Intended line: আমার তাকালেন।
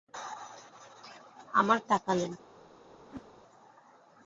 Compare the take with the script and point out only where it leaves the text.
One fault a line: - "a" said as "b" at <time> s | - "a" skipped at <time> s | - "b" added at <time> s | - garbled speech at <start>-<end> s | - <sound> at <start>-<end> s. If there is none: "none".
- whoosh at 3.0-3.3 s